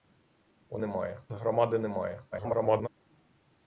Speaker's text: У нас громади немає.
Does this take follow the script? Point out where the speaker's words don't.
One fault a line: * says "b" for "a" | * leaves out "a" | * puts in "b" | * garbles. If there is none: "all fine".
* says "немає" for "нас"
* garbles